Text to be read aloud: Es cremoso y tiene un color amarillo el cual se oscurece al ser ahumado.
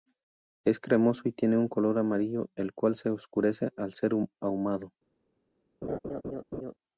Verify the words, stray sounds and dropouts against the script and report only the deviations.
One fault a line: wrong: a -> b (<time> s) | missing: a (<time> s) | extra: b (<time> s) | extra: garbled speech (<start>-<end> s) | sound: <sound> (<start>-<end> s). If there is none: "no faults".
sound: laugh (5.8-6.7 s)